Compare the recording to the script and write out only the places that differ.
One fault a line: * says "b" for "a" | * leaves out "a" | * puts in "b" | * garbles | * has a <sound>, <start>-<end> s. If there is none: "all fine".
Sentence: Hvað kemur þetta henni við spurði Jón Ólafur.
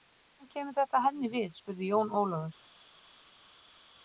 all fine